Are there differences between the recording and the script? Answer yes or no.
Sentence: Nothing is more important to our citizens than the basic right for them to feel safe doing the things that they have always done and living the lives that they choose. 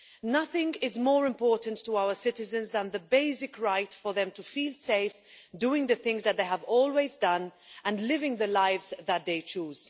no